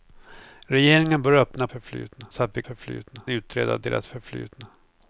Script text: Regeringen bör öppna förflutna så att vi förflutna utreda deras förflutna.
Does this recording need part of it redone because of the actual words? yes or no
no